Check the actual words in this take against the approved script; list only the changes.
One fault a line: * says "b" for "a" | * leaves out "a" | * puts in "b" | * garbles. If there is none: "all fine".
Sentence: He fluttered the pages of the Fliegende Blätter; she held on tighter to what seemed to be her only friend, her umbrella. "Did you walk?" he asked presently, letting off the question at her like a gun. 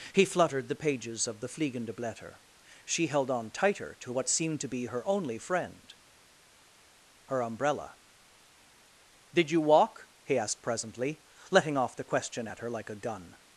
all fine